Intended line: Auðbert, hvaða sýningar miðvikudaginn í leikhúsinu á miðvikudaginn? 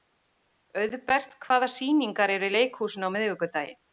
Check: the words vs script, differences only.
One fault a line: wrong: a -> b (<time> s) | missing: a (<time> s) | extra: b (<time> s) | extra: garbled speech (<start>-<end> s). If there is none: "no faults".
wrong: miðvikudaginn -> eru (2.4 s)